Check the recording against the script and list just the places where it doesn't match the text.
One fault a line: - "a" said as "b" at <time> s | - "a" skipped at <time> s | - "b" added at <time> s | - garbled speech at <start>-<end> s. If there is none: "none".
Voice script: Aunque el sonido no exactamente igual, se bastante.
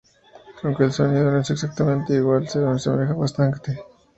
- "es" added at 1.4 s
- "asemeja" added at 2.6 s